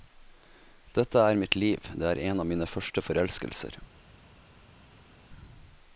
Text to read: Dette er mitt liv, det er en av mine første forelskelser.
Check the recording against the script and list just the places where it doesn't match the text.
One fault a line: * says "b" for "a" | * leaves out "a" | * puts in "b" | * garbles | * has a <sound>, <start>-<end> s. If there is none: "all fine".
all fine